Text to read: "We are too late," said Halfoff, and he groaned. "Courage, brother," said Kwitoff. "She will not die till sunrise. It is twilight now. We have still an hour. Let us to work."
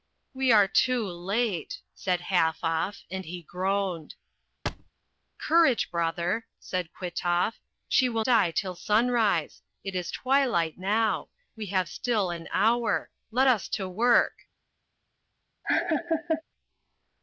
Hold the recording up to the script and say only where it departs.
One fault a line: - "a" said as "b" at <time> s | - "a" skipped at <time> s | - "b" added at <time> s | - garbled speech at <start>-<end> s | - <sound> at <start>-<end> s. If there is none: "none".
- thud at 4.7-4.9 s
- "not" skipped at 8.2 s
- laugh at 15.6-16.4 s